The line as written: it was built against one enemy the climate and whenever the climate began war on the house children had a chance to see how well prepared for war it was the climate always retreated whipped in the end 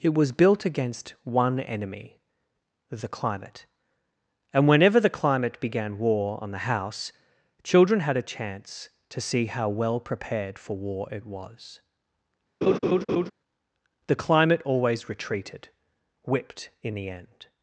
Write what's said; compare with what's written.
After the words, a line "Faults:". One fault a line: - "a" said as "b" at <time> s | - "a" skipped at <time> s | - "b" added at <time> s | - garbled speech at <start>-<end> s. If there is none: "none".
it was built against one enemy the climate and whenever the climate began war on the house children had a chance to see how well prepared for war it was the climate always retreated whipped in the end
Faults:
none